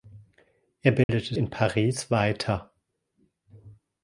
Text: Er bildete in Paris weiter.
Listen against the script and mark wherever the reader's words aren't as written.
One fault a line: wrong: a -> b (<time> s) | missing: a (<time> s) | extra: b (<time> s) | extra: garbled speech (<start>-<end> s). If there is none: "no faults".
no faults